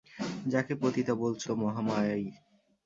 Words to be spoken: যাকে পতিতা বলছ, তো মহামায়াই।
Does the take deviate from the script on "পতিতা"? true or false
false